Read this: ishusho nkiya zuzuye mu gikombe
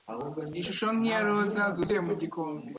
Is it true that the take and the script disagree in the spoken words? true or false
true